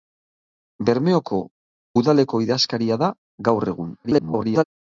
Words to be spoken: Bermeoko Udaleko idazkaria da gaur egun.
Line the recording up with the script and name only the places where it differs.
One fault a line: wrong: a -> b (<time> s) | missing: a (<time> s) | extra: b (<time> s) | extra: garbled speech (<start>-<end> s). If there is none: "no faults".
extra: garbled speech (4.0-4.6 s)